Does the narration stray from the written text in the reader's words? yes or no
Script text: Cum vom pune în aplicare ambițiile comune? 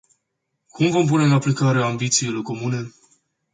no